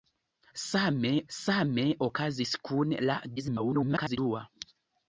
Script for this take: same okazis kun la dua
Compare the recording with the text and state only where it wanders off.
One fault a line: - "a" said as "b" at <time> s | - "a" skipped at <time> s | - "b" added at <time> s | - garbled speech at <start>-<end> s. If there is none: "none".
- "same" added at 1.4 s
- garbled speech at 3.4-4.2 s